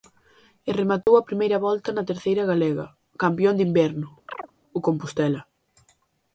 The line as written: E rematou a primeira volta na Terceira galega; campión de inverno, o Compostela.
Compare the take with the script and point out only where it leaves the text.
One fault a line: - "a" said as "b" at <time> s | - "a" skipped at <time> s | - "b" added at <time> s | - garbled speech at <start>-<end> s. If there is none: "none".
none